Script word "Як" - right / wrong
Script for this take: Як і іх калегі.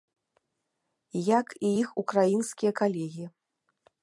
right